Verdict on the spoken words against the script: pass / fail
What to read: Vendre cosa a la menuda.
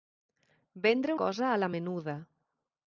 pass